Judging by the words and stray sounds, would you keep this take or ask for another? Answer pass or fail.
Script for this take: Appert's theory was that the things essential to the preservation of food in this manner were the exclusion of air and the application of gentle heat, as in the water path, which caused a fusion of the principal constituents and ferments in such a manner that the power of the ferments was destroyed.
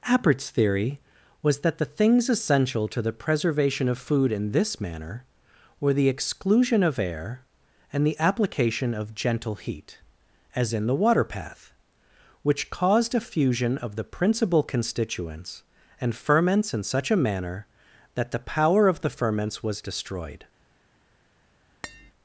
fail